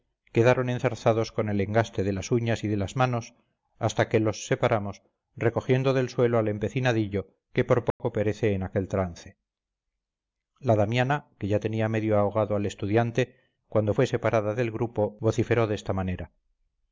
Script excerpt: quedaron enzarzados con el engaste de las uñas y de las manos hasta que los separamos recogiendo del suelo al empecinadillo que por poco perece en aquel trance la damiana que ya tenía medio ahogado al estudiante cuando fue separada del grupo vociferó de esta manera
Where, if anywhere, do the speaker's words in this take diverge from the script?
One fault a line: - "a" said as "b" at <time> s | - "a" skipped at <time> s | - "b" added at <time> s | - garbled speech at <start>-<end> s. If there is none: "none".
none